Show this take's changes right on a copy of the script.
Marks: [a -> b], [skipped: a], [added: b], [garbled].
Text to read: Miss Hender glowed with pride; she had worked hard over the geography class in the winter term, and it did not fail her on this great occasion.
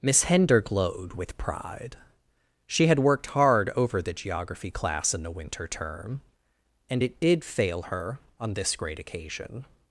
Miss Hender glowed with pride; she had worked hard over the geography class in the winter term, and it did [skipped: not] fail her on this great occasion.